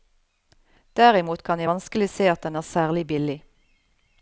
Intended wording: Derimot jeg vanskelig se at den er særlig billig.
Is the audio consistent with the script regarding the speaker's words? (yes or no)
no